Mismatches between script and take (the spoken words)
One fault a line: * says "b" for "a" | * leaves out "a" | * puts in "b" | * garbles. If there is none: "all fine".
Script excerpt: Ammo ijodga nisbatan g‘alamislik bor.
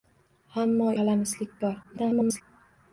* leaves out "ijodga nisbatan"
* garbles